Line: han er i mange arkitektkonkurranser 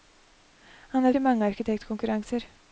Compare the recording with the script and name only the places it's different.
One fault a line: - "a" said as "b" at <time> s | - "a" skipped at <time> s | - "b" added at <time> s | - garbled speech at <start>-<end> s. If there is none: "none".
none